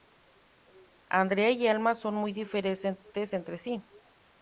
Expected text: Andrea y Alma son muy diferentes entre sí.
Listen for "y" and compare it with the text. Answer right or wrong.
right